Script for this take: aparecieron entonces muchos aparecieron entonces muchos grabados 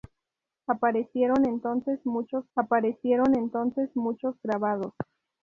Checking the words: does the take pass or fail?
pass